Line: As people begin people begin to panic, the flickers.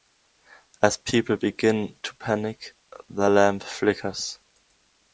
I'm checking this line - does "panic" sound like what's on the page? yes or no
yes